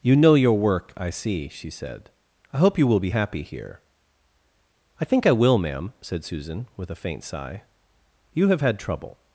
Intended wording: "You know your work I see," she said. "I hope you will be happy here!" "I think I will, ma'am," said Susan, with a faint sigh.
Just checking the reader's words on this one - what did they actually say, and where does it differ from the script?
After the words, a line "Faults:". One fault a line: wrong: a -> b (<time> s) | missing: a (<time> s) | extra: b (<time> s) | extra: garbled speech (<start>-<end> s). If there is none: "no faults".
"You know your work I see," she said. "I hope you will be happy here!" "I think I will, ma'am," said Susan, with a faint sigh. "You have had trouble
Faults:
extra: You have had trouble (8.3 s)